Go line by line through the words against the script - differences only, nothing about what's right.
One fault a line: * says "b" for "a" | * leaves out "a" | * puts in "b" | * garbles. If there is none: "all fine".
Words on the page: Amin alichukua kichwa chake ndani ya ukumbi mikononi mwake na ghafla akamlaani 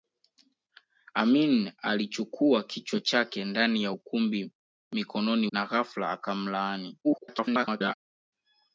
* leaves out "mwake"
* garbles